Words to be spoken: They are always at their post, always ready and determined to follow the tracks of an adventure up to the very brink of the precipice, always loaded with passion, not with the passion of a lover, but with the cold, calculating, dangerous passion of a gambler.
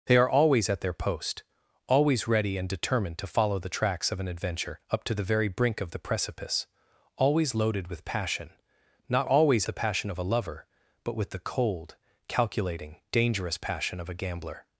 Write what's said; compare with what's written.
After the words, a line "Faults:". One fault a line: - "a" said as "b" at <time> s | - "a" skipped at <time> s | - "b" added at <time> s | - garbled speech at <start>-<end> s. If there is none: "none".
They are always at their post, always ready and determined to follow the tracks of an adventure up to the very brink of the precipice, always loaded with passion, not always the passion of a lover, but with the cold, calculating, dangerous passion of a gambler.
Faults:
- "with" said as "always" at 9.3 s